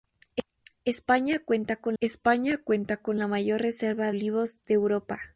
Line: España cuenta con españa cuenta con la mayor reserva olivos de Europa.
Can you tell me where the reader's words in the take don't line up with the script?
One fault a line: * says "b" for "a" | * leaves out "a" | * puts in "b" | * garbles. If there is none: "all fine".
all fine